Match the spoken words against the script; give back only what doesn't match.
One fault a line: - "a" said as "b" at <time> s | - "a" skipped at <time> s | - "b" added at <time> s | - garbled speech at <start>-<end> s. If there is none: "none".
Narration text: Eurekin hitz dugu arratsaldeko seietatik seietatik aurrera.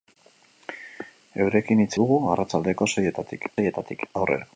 none